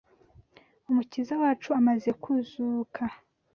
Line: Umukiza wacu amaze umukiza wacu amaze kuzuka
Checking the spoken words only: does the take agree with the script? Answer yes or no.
no